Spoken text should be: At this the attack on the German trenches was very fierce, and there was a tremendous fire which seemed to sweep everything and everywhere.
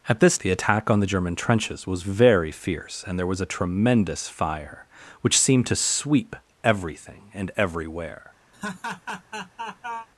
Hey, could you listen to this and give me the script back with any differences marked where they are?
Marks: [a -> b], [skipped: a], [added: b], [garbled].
At this the attack on the German trenches was very fierce, and there was a tremendous fire which seemed to sweep everything and everywhere.